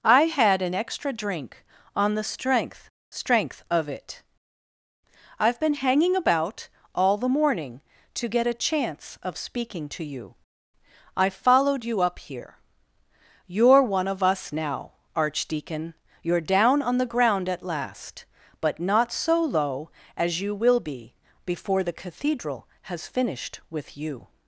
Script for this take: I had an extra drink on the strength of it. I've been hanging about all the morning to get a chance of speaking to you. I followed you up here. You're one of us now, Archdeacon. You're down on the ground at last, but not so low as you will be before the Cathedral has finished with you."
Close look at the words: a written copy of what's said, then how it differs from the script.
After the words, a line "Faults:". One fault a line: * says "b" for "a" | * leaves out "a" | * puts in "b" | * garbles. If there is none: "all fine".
I had an extra drink on the strength strength of it. I've been hanging about all the morning to get a chance of speaking to you. I followed you up here. You're one of us now, Archdeacon. You're down on the ground at last, but not so low as you will be before the Cathedral has finished with you."
Faults:
* puts in "strength"